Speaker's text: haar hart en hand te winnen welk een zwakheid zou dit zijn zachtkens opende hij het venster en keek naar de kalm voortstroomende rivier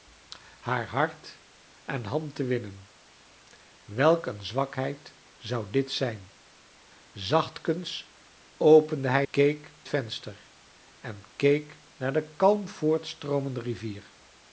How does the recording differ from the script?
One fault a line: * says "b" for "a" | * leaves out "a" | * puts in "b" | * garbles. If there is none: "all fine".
* says "keek" for "het"